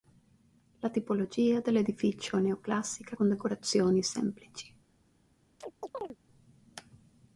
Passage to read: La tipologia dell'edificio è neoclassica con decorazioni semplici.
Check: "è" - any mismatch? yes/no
no